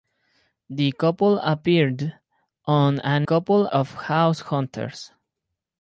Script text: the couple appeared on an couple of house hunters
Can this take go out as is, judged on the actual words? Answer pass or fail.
pass